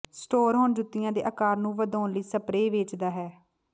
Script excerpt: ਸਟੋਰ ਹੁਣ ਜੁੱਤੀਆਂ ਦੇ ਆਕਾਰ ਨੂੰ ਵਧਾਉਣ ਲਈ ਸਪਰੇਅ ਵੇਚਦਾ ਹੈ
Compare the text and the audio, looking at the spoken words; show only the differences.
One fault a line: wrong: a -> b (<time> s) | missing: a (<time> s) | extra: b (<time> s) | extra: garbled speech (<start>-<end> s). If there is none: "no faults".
no faults